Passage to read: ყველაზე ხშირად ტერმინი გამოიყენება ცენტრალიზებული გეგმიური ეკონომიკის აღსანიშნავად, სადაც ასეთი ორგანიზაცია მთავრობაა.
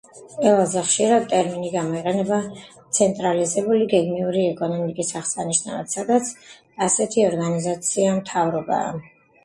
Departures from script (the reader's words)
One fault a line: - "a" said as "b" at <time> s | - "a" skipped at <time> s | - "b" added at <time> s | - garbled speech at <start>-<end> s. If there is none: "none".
none